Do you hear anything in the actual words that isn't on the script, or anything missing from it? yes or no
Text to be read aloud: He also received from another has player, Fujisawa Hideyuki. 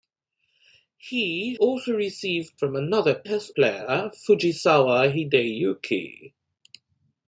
no